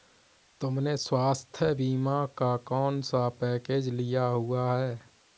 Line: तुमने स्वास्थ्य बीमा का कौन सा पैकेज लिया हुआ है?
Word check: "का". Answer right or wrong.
right